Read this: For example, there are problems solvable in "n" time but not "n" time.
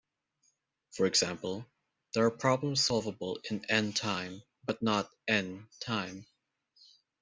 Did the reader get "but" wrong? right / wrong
right